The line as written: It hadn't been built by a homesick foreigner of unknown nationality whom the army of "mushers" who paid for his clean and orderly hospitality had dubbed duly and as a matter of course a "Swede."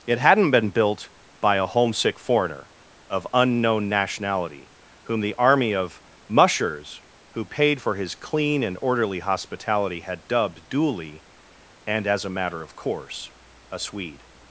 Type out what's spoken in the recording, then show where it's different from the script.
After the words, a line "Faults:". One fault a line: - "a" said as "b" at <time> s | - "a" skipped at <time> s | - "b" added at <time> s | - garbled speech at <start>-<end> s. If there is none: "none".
It hadn't been built by a homesick foreigner of unknown nationality whom the army of "mushers" who paid for his clean and orderly hospitality had dubbed duly and as a matter of course a "Swede."
Faults:
none